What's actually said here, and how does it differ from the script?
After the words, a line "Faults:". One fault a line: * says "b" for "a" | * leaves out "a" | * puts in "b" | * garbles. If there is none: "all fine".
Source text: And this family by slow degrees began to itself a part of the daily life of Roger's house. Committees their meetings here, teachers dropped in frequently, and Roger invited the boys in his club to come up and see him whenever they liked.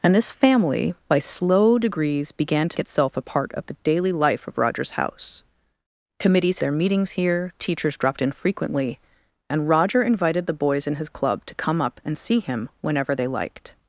And this family by slow degrees began to itself a part of the daily life of Roger's house. Committees their meetings here, teachers dropped in frequently, and Roger invited the boys in his club to come up and see him whenever they liked.
Faults:
all fine